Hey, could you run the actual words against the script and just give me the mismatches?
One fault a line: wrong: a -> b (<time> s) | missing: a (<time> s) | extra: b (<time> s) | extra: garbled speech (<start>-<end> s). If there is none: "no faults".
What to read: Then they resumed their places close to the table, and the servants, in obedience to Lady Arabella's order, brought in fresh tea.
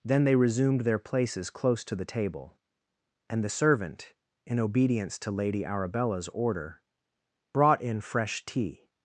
wrong: servants -> servant (3.5 s)